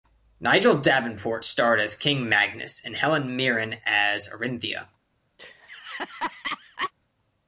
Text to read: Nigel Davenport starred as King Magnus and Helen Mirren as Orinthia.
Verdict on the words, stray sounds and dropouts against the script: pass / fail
fail